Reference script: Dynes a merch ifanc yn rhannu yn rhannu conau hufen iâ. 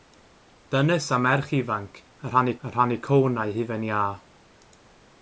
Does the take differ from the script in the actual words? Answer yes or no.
no